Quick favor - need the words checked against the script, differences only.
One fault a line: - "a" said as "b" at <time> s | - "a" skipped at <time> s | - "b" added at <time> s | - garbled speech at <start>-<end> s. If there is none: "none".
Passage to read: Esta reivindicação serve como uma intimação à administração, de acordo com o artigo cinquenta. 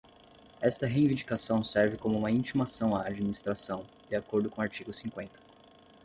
none